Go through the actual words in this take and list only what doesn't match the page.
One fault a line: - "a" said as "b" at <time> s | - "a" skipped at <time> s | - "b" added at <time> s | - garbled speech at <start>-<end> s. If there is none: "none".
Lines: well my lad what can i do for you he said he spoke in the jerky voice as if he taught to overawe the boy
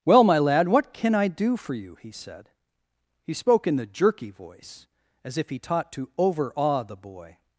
none